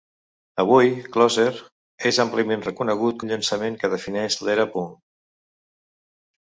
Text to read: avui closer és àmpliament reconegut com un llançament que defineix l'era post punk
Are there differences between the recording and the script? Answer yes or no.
yes